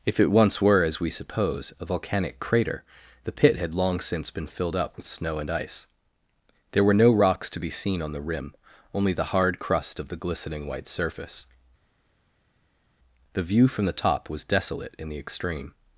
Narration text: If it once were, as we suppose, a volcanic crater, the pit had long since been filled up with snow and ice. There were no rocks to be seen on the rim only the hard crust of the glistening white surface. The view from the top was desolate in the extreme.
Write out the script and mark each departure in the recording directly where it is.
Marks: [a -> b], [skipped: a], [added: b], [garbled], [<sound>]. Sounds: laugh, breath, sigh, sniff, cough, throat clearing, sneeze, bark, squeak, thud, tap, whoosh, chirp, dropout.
If it once were, as we suppose, a volcanic crater, the pit had long since been filled up with snow and ice. There were no rocks to be seen on the rim only the hard crust of the glistening white surface. The view from the top was desolate in the extreme.